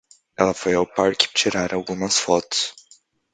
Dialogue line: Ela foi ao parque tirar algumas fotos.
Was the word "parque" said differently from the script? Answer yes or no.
no